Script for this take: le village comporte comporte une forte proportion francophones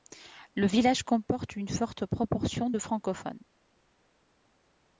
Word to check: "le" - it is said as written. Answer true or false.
true